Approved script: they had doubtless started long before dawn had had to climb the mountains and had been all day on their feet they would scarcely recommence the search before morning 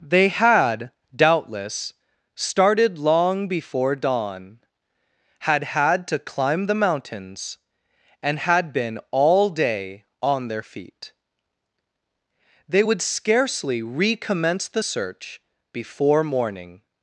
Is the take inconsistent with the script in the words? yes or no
no